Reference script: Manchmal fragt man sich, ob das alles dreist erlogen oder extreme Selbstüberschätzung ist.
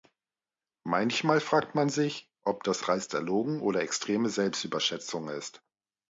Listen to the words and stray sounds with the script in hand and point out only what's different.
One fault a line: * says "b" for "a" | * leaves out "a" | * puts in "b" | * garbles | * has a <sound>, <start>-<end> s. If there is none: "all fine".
* leaves out "alles"